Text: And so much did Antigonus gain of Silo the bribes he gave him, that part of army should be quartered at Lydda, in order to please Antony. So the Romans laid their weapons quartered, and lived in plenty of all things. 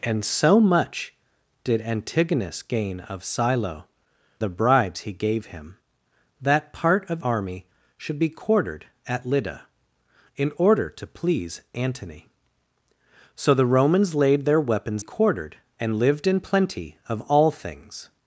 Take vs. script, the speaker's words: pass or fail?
pass